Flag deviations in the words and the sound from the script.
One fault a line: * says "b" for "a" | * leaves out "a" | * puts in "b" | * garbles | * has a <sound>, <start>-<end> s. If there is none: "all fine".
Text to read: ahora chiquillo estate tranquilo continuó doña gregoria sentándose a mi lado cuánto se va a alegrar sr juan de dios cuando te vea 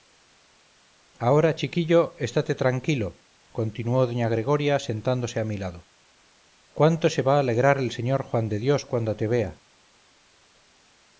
* puts in "el"